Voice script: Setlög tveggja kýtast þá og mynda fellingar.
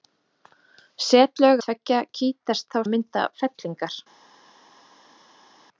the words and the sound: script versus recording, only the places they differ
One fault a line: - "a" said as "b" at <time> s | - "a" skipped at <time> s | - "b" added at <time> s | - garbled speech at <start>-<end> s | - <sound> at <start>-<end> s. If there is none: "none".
none